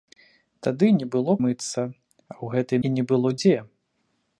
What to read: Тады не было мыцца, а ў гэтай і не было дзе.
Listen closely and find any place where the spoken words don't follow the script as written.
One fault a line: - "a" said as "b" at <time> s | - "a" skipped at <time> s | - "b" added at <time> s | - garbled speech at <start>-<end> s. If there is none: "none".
none